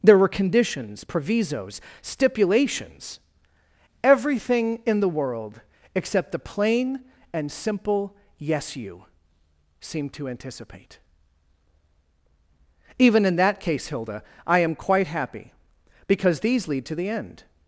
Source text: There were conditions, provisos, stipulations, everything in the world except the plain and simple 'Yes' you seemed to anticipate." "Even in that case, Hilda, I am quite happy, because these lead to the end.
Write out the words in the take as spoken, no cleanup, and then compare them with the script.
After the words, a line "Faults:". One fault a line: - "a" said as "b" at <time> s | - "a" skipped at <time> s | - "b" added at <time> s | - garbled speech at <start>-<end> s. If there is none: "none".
There were conditions, provisos, stipulations, everything in the world except the plain and simple 'Yes' you seemed to anticipate." "Even in that case, Hilda, I am quite happy, because these lead to the end.
Faults:
none